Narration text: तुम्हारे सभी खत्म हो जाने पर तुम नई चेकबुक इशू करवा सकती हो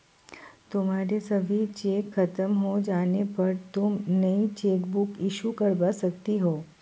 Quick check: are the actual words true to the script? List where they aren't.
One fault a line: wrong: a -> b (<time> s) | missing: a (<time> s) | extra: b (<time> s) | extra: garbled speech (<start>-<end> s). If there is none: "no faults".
extra: चेक (1.7 s)